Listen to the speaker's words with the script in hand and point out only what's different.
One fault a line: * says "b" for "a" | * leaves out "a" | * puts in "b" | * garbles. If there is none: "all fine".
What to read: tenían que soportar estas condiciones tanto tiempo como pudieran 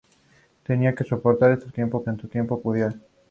* says "tiempo" for "condiciones"
* leaves out "como"